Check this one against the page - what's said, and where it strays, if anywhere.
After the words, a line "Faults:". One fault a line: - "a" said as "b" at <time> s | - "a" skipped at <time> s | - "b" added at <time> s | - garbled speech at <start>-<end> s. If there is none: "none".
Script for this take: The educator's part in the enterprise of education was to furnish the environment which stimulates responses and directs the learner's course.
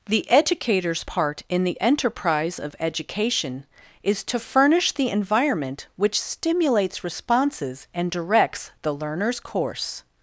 The educator's part in the enterprise of education is to furnish the environment which stimulates responses and directs the learner's course.
Faults:
- "was" said as "is" at 4.0 s